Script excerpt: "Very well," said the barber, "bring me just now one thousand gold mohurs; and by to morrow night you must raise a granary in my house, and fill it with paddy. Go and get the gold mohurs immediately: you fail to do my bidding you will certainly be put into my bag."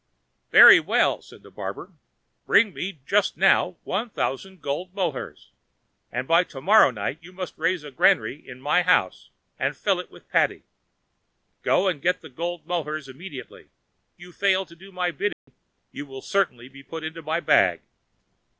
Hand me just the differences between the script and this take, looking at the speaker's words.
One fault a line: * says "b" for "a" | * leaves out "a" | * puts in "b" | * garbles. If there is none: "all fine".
all fine